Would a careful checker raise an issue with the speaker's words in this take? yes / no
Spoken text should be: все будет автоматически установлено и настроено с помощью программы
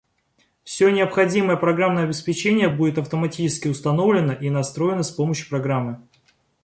yes